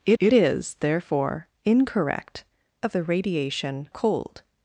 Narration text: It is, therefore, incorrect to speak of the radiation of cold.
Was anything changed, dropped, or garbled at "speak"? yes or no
yes